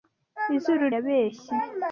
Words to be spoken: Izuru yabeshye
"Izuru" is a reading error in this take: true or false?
false